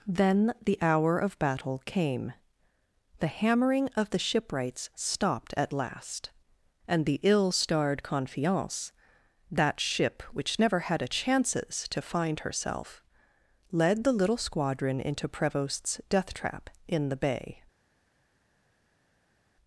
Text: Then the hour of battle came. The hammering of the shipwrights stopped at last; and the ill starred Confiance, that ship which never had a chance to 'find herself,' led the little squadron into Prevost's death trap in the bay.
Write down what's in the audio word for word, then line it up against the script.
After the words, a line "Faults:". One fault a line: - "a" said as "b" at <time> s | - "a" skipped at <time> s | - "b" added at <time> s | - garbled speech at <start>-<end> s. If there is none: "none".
Then the hour of battle came. The hammering of the shipwrights stopped at last; and the ill starred Confiance, that ship which never had a chances to 'find herself,' led the little squadron into Prevost's death trap in the bay.
Faults:
- "chance" said as "chances" at 11.1 s